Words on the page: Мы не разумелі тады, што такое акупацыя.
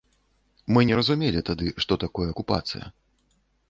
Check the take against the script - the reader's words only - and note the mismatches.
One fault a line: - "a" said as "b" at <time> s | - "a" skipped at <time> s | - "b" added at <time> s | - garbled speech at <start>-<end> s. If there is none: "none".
none